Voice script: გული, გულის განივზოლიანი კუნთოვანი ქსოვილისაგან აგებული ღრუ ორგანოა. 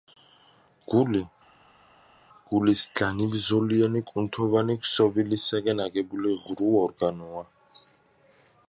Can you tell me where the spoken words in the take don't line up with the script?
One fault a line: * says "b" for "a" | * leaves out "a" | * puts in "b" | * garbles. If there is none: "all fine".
all fine